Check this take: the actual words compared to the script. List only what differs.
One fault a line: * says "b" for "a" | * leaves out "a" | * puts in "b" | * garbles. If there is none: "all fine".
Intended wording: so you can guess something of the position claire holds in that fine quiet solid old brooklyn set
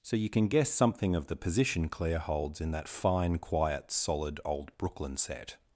all fine